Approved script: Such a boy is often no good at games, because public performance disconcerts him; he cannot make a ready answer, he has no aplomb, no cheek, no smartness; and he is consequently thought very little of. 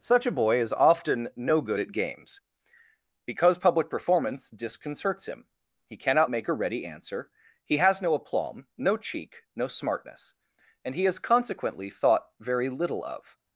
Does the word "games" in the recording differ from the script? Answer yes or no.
no